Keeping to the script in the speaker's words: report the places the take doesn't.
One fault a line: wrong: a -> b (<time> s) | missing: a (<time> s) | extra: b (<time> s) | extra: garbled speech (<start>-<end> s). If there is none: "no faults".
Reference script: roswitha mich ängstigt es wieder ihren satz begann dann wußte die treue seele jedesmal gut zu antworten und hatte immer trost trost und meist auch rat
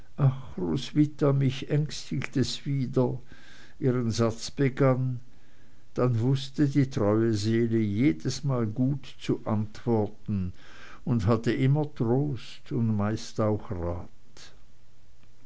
missing: trost (12.7 s)